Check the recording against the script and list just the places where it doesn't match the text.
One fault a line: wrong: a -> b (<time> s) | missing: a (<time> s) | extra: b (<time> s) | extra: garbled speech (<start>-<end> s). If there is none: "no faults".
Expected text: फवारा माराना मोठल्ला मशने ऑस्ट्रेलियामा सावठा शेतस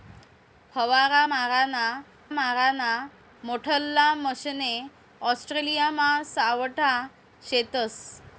extra: माराना (2.3 s)